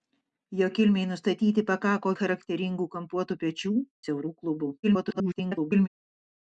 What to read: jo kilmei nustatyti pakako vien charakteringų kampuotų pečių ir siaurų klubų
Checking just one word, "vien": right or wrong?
wrong